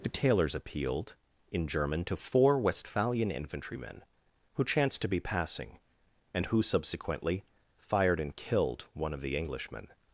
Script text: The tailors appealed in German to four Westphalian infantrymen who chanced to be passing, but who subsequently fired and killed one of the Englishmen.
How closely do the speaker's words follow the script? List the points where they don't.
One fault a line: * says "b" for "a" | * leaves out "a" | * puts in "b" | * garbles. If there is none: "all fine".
* says "and" for "but"